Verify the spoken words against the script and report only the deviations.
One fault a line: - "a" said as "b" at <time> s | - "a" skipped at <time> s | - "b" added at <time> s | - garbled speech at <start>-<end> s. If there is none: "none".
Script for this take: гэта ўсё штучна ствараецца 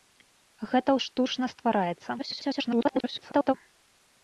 - "ўсё" skipped at 0.9 s
- garbled speech at 2.2-3.5 s